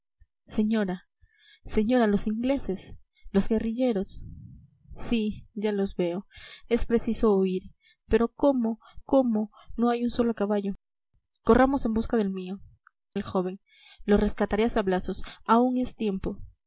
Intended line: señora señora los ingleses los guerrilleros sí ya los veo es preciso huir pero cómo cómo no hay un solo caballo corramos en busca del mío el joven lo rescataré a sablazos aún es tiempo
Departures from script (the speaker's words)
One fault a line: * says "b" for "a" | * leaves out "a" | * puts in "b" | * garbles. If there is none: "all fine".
all fine